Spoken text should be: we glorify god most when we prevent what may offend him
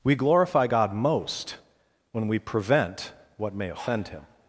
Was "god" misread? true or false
false